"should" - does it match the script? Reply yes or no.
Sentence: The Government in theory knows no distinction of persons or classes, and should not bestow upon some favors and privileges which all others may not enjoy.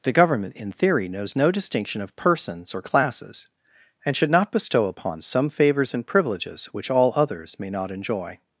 yes